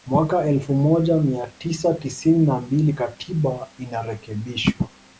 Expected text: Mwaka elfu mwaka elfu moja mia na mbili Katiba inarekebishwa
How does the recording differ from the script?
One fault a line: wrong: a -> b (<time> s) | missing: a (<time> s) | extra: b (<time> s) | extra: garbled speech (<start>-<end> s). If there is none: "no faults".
wrong: mwaka elfu moja mia -> moja mia tisa tisini (0.8 s)